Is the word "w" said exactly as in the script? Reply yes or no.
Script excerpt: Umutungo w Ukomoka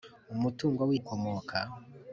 yes